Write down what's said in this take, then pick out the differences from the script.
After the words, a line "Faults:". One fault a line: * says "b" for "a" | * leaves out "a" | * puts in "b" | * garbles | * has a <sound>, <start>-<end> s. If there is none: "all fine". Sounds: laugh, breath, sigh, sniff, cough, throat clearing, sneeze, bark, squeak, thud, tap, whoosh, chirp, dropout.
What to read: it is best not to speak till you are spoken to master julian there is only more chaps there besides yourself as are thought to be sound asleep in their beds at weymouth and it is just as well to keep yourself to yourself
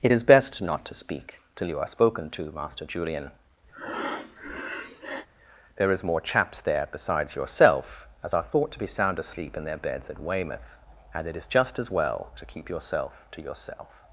it is best not to speak till you are spoken to master julian there is more chaps there besides yourself as are thought to be sound asleep in their beds at weymouth and it is just as well to keep yourself to yourself
Faults:
* has a breath, 3.7-5.3 s
* leaves out "only"